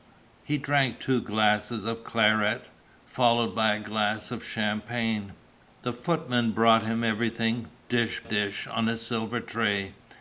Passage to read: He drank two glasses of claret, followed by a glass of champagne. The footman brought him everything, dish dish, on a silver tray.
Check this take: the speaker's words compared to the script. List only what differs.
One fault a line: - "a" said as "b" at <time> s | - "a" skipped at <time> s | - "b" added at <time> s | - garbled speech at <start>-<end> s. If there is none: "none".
none